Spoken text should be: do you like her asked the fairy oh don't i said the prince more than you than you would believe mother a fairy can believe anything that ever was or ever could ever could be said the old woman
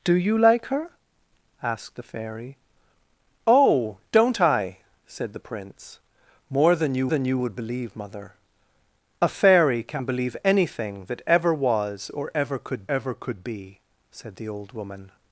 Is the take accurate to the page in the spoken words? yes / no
yes